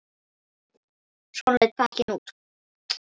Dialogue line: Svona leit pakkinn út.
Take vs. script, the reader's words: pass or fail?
pass